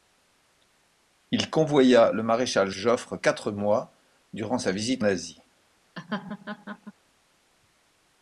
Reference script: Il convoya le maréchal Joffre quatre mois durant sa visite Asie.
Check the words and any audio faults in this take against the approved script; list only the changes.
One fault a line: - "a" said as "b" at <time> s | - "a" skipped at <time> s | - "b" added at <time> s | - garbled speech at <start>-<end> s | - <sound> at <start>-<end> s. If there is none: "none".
- laugh at 6.0-6.9 s